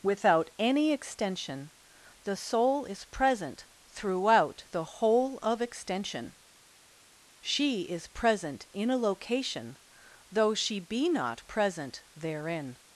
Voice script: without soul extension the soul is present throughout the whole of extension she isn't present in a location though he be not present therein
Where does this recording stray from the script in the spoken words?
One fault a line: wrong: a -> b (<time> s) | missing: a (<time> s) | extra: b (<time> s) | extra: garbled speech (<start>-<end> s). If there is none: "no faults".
wrong: soul -> any (0.6 s)
wrong: isn't -> is (7.8 s)
wrong: he -> she (10.5 s)